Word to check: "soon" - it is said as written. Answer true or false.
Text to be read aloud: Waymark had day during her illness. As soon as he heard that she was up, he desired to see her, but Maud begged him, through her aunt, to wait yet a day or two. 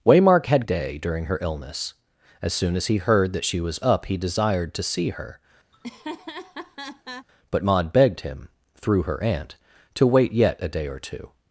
true